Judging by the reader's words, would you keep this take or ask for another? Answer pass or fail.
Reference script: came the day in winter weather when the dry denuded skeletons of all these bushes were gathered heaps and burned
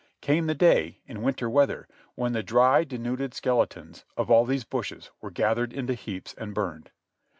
fail